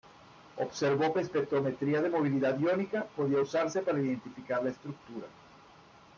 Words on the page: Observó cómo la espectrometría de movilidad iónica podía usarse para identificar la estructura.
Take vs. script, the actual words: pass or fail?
fail